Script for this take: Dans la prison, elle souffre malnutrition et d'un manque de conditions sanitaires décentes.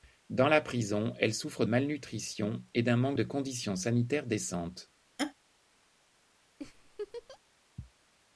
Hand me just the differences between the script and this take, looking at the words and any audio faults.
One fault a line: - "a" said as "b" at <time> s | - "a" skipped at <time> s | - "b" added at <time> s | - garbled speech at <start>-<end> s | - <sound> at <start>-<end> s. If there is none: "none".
- laugh at 5.2-5.3 s
- laugh at 6.6-7.4 s